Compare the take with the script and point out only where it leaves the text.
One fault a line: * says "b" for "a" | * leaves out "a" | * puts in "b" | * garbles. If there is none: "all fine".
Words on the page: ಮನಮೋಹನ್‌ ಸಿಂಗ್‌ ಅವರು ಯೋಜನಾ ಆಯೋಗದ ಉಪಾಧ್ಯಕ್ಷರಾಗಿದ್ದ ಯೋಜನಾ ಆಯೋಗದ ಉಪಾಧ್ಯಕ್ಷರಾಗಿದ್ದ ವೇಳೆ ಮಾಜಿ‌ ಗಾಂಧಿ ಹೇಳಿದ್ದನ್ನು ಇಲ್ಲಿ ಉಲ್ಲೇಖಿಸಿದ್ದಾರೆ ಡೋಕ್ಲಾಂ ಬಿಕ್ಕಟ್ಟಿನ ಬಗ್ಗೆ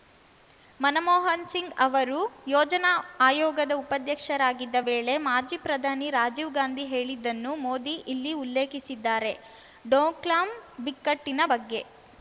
* says "ವೇಳೆ ಮಾಜಿ ಪ್ರಧಾನಿ ರಾಜೀವ್" for "ಯೋಜನಾ ಆಯೋಗದ ಉಪಾಧ್ಯಕ್ಷರಾಗಿದ್ದ ವೇಳೆ ಮಾಜಿ"
* puts in "ಮೋದಿ"